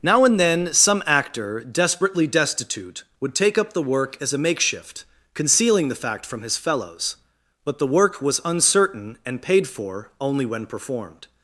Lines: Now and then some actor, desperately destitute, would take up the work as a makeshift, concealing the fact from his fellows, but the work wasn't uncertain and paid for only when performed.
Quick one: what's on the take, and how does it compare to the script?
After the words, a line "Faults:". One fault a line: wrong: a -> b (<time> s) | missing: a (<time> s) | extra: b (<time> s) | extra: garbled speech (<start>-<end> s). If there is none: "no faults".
Now and then some actor, desperately destitute, would take up the work as a makeshift, concealing the fact from his fellows, but the work was uncertain and paid for only when performed.
Faults:
wrong: wasn't -> was (8.2 s)